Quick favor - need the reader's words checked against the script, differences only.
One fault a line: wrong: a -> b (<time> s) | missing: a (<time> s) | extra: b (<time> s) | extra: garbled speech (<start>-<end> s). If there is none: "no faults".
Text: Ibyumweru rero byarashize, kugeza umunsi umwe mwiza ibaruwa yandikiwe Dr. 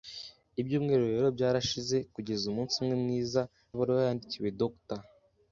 no faults